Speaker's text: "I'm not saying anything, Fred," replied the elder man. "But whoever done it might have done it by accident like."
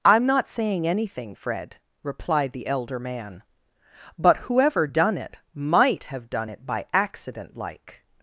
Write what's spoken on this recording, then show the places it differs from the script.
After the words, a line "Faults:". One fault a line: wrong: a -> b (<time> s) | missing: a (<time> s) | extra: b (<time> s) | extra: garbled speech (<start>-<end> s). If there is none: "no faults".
"I'm not saying anything, Fred," replied the elder man. "But whoever done it might have done it by accident like."
Faults:
no faults